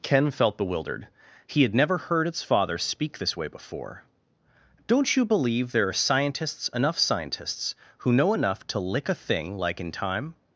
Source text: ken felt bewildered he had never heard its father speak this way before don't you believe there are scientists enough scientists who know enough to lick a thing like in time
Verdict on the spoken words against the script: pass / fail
pass